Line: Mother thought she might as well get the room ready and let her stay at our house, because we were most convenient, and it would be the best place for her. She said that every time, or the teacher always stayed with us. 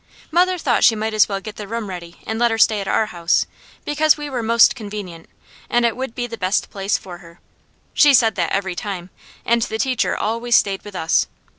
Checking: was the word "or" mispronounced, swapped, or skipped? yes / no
yes